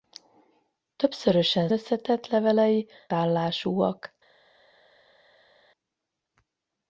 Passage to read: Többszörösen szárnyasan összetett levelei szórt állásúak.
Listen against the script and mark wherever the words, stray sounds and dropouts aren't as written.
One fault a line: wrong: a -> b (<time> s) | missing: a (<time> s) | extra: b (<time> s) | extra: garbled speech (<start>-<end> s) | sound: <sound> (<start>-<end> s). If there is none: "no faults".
missing: szárnyasan (1.7 s)
missing: szórt (2.9 s)